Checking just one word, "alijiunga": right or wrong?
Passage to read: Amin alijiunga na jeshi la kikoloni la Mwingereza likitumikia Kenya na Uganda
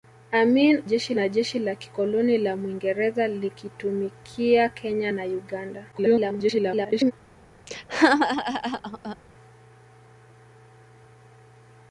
wrong